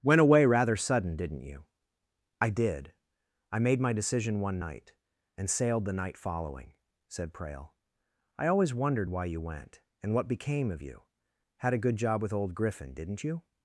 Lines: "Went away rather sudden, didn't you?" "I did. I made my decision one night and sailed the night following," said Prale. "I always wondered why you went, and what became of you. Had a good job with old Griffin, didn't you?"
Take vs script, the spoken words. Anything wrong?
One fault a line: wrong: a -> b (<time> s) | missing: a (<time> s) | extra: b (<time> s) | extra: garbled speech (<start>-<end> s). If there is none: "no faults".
no faults